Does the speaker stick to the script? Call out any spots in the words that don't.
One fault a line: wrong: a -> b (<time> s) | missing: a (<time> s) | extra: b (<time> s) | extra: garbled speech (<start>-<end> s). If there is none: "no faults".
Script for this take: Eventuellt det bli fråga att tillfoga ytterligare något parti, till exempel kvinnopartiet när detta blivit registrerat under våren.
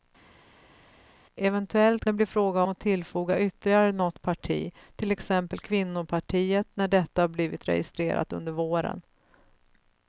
no faults